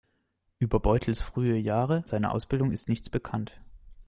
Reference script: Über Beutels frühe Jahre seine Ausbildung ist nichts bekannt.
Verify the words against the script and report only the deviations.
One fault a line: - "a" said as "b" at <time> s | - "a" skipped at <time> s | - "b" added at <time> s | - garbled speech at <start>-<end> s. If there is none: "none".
none